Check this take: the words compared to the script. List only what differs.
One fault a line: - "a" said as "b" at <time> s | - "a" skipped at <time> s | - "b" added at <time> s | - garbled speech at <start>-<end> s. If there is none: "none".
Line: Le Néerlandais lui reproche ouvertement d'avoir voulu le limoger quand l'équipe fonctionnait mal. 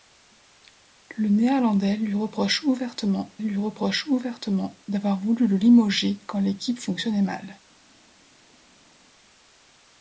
- "lui reproche ouvertement" added at 3.4 s